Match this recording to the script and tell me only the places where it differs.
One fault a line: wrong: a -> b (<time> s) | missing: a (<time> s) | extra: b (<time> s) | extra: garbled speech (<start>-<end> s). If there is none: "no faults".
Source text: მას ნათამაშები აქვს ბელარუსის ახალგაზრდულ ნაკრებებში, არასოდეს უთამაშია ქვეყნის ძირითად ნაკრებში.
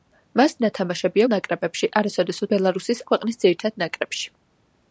missing: აქვს ბელარუსის ახალგაზრდულ (1.2 s)
wrong: უთამაშია -> ბელარუსის (2.5 s)